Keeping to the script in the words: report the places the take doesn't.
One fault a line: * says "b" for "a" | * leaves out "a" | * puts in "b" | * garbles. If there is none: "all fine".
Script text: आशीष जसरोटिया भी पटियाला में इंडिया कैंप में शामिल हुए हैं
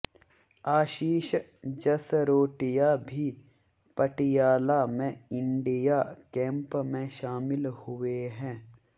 all fine